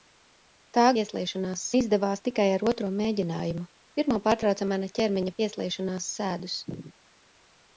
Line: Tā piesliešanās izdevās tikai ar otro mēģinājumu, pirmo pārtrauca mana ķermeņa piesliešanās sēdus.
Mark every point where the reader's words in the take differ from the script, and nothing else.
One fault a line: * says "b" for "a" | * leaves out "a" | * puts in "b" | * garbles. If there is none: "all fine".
all fine